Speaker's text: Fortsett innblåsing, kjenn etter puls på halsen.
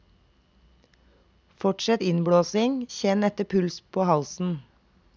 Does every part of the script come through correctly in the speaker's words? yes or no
yes